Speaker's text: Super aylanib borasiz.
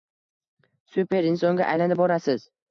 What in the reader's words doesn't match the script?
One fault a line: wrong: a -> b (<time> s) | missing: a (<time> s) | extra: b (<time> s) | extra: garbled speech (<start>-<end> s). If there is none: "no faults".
extra: insonga (1.3 s)